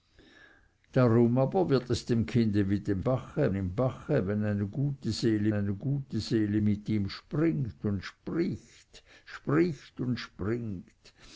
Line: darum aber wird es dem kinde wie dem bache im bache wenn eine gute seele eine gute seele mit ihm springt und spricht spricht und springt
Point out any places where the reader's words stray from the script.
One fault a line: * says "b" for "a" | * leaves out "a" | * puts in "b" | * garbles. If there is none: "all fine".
all fine